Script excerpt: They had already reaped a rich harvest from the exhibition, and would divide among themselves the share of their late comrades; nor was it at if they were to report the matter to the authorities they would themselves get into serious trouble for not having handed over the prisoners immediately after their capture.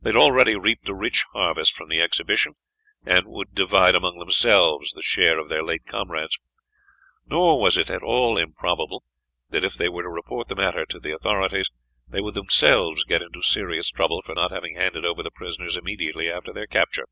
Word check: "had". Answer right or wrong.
right